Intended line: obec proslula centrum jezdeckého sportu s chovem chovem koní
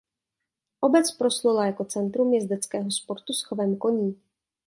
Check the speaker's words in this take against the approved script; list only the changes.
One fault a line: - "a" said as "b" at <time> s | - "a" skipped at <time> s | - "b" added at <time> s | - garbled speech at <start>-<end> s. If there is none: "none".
- "jako" added at 1.6 s
- "chovem" skipped at 3.8 s